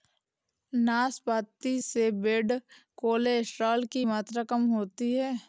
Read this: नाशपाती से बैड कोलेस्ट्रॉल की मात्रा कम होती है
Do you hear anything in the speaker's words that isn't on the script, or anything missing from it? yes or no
no